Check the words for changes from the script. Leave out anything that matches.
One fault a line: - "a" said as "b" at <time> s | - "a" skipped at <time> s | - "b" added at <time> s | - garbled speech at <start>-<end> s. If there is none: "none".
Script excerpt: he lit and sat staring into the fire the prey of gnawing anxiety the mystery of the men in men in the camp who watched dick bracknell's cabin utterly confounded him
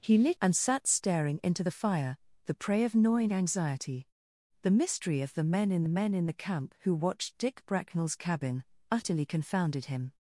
none